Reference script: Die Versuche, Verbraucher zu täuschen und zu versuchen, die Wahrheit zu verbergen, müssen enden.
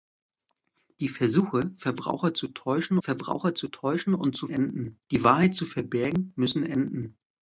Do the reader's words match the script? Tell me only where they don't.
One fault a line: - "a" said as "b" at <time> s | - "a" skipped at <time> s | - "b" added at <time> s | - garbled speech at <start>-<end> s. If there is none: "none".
- "Verbraucher zu täuschen" added at 3.0 s
- "versuchen" said as "enden" at 4.5 s